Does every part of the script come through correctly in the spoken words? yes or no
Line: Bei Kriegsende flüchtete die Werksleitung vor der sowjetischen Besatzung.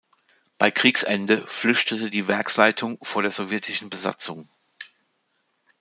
yes